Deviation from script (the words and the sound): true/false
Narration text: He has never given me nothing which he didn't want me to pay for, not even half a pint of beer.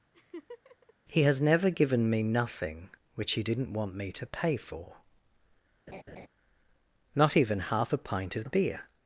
true